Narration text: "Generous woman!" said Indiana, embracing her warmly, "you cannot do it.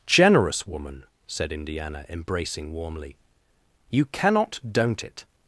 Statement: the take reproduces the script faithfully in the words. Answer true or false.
false